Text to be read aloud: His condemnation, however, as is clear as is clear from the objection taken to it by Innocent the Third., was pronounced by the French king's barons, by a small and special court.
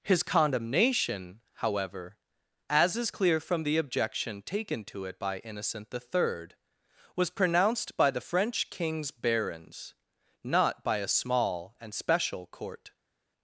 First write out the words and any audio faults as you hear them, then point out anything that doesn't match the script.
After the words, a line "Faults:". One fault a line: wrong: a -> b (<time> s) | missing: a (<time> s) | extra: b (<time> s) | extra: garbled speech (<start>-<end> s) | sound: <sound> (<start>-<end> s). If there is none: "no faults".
His condemnation, however, as is clear from the objection taken to it by Innocent the Third., was pronounced by the French king's barons, not by a small and special court.
Faults:
missing: as is clear (3.4 s)
extra: not (10.4 s)